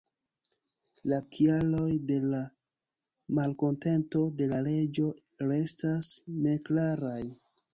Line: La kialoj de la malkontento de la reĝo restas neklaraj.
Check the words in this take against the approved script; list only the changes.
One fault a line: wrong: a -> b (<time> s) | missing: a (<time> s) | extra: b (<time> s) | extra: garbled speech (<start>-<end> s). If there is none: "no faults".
no faults